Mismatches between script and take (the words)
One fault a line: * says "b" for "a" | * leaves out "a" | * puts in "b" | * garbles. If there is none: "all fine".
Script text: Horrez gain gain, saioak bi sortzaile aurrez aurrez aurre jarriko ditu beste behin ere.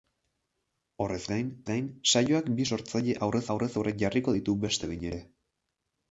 all fine